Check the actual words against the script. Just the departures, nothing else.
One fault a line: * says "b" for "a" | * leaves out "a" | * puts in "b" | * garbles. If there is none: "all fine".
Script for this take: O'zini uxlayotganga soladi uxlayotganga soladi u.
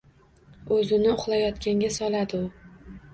* leaves out "uxlayotganga soladi"